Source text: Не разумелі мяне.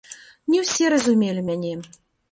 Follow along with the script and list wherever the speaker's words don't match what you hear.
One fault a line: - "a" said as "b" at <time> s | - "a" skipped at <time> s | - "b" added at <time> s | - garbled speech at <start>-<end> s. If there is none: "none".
- "ўсе" added at 0.6 s